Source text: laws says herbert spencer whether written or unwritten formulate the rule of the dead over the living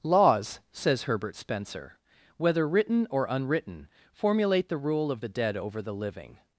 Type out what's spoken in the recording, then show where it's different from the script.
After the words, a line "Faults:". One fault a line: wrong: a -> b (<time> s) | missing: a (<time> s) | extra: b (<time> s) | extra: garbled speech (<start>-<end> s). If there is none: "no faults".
laws says herbert spencer whether written or unwritten formulate the rule of the dead over the living
Faults:
no faults